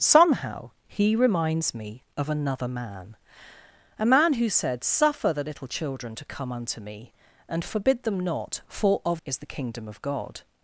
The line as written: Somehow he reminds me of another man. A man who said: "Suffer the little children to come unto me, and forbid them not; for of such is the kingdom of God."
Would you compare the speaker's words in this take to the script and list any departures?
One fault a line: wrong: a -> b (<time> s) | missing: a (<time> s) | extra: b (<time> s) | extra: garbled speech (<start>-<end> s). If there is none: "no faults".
missing: such (9.2 s)